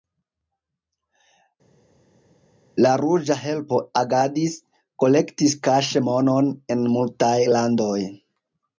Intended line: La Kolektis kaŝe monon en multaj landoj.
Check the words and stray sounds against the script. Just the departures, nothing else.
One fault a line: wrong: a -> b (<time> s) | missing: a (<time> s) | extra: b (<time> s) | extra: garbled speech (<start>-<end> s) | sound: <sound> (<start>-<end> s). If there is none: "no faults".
extra: Ruĝa Helpo agadis (3.0 s)